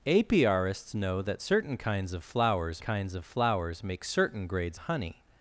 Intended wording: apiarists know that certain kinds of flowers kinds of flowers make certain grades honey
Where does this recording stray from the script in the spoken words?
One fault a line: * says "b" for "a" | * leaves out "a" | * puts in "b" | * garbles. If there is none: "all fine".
all fine